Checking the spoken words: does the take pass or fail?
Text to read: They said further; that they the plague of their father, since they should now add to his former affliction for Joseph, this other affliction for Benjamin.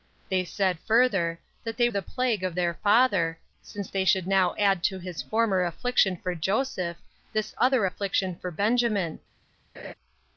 pass